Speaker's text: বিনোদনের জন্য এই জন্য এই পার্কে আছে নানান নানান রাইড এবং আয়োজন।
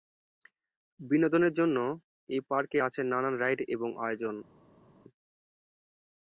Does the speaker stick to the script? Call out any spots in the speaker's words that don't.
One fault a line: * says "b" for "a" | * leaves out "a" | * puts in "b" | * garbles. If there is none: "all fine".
* leaves out "জন্য এই"
* leaves out "নানান"